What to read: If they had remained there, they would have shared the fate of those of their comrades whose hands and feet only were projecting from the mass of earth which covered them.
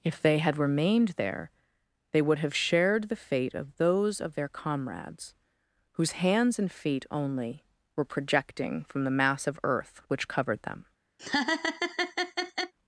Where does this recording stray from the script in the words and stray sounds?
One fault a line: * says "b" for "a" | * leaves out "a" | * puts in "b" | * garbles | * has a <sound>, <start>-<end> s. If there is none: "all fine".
* has a laugh, 11.2-12.7 s